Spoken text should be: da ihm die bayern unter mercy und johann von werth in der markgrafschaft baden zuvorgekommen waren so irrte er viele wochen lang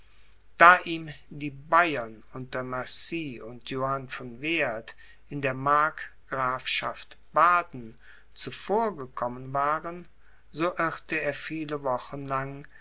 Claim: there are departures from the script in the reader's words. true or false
false